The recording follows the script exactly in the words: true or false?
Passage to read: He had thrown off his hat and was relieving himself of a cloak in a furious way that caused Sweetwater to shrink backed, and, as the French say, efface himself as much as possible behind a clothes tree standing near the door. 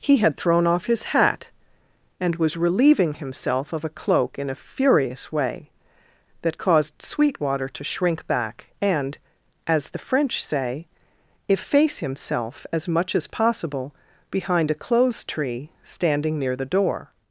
false